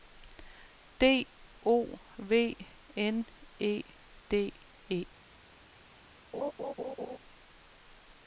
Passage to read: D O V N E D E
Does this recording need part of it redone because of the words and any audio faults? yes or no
yes